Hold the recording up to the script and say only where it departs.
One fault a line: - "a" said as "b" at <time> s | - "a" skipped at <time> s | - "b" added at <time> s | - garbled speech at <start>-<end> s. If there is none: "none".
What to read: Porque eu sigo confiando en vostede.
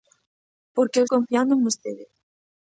- "sigo" skipped at 1.1 s